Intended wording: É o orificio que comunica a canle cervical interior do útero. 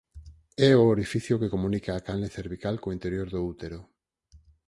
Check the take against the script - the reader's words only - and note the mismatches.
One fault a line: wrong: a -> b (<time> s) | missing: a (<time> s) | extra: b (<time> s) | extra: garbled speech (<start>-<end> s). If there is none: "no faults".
extra: co (2.8 s)